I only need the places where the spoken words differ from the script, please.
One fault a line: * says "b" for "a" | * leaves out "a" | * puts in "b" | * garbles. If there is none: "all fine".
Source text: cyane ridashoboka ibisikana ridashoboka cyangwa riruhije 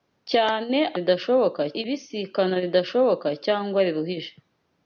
all fine